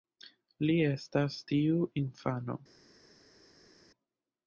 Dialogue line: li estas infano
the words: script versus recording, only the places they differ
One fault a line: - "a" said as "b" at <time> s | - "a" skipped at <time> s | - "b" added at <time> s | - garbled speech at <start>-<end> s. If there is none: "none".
- "tiu" added at 1.5 s